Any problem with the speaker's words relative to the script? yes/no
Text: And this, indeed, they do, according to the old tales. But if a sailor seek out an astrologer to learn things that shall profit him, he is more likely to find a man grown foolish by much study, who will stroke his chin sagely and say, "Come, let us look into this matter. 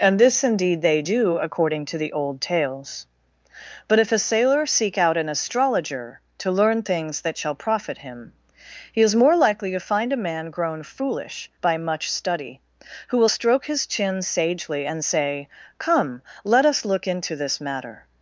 no